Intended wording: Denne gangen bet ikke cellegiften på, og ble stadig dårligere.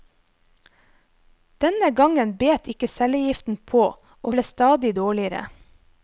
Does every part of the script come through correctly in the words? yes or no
yes